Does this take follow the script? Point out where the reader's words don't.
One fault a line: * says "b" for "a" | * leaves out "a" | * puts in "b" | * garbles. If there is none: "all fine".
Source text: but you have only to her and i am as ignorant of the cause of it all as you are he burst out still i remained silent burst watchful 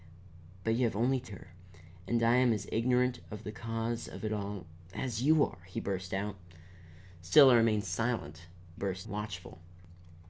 all fine